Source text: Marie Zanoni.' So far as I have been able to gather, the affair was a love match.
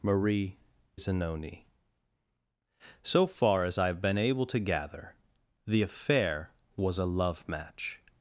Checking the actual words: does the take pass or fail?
pass